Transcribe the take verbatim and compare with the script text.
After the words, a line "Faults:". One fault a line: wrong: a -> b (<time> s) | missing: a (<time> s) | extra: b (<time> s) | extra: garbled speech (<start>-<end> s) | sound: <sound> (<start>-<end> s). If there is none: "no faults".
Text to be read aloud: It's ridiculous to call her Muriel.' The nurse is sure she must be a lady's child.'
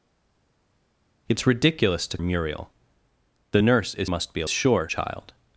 It's ridiculous to Muriel.' The nurse is must be a sure child.'
Faults:
missing: call her (2.2 s)
missing: sure she (4.1 s)
wrong: lady's -> sure (4.5 s)